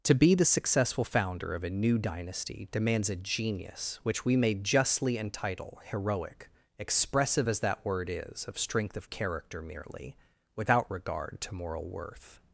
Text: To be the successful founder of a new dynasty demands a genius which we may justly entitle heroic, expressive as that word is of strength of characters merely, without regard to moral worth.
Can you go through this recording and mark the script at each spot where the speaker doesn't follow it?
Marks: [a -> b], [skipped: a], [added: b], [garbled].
To be the successful founder of a new dynasty demands a genius which we may justly entitle heroic, expressive as that word is of strength of [characters -> character] merely, without regard to moral worth.